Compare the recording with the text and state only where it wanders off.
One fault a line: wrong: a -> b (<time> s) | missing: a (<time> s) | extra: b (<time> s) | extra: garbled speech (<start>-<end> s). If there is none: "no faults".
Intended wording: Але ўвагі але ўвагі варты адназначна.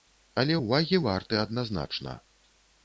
missing: але ўвагі (1.0 s)